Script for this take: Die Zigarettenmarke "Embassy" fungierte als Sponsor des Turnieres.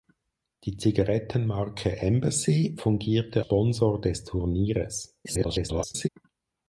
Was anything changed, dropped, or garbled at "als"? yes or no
yes